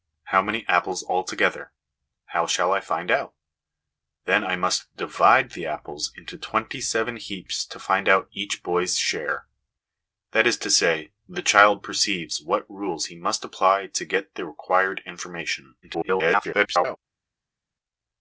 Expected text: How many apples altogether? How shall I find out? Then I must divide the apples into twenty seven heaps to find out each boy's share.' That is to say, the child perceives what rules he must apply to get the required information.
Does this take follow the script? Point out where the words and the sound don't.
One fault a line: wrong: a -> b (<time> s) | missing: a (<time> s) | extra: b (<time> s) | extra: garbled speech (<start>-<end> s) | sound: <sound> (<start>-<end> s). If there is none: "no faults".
extra: garbled speech (15.8-17.0 s)